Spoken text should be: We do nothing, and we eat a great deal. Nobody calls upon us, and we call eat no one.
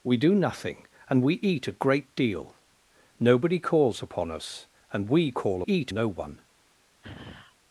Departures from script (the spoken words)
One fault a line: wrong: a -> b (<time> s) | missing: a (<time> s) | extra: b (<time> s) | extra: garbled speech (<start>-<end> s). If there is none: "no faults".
no faults